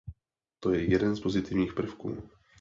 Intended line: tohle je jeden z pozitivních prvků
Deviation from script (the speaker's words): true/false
true